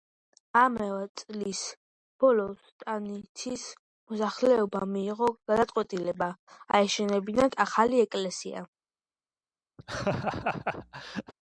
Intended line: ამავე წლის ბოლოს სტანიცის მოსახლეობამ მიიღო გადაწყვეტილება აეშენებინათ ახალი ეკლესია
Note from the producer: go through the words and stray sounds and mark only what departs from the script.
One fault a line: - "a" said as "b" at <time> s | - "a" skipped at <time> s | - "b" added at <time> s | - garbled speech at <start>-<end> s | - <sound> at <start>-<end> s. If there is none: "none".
- laugh at 9.8-11.3 s